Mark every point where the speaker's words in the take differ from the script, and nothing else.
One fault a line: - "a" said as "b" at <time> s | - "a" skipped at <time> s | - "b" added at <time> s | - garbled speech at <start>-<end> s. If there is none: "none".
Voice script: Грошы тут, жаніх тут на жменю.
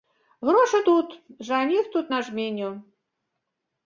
none